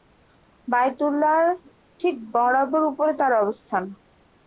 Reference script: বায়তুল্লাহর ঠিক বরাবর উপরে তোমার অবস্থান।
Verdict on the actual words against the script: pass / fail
fail